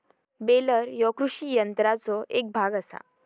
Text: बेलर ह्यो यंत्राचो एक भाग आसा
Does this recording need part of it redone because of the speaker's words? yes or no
yes